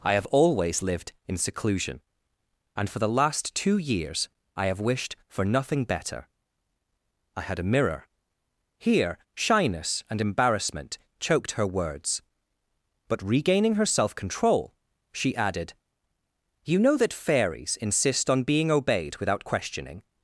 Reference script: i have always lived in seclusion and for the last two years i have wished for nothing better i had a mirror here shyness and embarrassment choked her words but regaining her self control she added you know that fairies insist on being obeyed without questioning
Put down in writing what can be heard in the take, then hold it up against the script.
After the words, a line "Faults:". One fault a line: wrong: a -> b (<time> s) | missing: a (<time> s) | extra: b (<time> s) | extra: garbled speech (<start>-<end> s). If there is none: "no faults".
i have always lived in seclusion and for the last two years i have wished for nothing better i had a mirror here shyness and embarrassment choked her words but regaining her self control she added you know that fairies insist on being obeyed without questioning
Faults:
no faults